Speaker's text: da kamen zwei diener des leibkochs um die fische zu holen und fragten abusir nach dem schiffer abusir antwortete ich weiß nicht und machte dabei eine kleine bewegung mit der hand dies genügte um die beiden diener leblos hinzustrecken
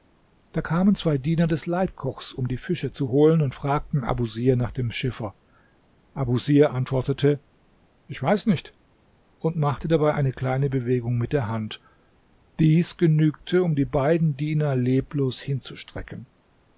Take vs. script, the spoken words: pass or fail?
pass